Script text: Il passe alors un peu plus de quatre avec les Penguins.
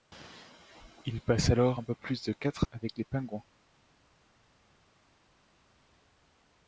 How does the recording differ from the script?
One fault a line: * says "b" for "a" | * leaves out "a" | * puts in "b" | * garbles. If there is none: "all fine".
all fine